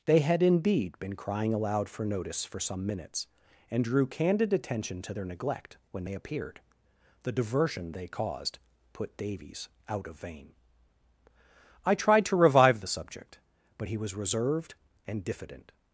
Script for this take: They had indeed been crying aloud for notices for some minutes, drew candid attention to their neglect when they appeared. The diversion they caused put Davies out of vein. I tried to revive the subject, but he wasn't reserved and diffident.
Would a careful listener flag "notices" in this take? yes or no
yes